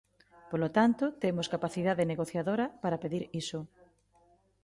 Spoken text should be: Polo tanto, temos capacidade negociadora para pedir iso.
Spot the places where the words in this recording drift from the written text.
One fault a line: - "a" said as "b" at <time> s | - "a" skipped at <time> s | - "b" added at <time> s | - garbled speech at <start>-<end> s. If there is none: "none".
none